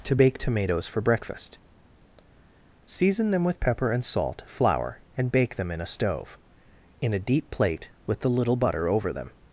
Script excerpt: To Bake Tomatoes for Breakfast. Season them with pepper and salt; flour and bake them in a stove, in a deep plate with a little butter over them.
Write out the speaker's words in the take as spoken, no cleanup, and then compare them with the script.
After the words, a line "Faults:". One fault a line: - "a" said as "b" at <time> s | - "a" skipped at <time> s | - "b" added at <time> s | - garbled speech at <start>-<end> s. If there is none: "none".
To Bake Tomatoes for Breakfast. Season them with pepper and salt; flour and bake them in a stove, in a deep plate with the little butter over them.
Faults:
- "a" said as "the" at 8.2 s